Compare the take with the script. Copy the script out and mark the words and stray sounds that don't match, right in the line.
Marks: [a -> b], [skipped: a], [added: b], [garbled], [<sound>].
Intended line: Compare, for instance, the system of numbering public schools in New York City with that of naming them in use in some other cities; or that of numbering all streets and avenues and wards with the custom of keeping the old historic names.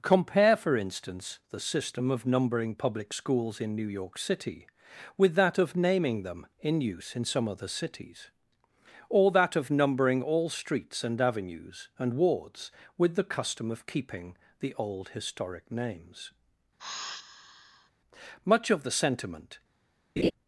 Compare, for instance, the system of numbering public schools in New York City with that of naming them in use in some other cities; or that of numbering all streets and avenues and wards with the custom of keeping the old historic names. [sigh] [added: Much of the sentiment] [laugh]